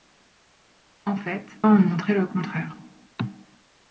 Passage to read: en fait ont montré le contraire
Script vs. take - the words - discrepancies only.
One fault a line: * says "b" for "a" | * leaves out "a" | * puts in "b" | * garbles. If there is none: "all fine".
all fine